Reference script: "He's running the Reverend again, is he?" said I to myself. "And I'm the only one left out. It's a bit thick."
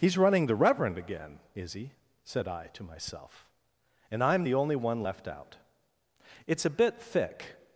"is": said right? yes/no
yes